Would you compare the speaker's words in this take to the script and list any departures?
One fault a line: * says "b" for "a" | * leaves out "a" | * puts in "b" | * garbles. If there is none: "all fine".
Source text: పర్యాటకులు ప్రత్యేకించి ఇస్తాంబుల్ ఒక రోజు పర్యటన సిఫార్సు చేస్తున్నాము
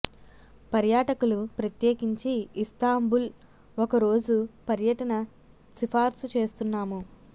all fine